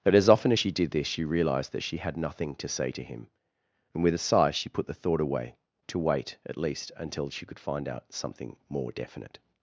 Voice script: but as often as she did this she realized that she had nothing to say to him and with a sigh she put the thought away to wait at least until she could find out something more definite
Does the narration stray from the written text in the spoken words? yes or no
no